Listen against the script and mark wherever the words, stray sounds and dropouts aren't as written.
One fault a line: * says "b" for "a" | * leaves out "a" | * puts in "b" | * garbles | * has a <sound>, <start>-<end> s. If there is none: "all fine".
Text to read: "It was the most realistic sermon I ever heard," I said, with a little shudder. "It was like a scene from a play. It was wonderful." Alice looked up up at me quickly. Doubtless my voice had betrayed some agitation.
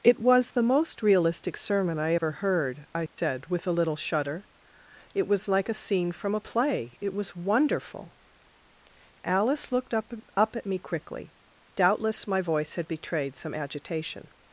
* has a dropout, 3.1-3.2 s